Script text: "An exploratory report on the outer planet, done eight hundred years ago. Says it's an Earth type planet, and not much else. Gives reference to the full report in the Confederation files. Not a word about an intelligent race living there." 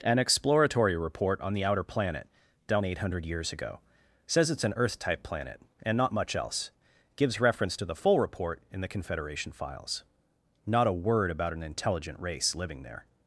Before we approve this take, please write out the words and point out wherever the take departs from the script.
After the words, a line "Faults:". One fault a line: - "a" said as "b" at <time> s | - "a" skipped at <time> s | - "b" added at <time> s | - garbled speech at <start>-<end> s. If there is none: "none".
"An exploratory report on the outer planet, done eight hundred years ago. Says it's an Earth type planet, and not much else. Gives reference to the full report in the Confederation files. Not a word about an intelligent race living there."
Faults:
none